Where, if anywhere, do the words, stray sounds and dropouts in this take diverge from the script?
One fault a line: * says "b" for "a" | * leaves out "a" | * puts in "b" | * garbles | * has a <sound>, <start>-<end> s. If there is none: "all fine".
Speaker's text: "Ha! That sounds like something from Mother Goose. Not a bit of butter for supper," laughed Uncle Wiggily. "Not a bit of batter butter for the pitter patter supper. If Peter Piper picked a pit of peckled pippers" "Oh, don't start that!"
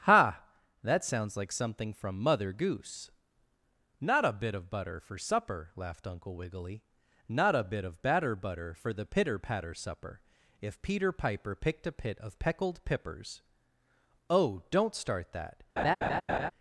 * has a laugh, 15.8-16.5 s